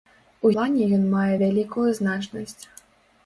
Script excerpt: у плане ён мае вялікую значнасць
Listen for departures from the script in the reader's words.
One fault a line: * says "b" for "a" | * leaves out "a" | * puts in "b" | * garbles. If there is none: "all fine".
all fine